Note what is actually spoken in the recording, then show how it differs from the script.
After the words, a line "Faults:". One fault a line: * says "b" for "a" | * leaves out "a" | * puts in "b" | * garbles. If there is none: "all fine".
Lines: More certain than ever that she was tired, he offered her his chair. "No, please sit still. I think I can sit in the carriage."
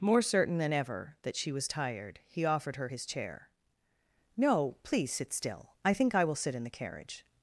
More certain than ever that she was tired, he offered her his chair. "No, please sit still. I think I will sit in the carriage."
Faults:
* says "will" for "can"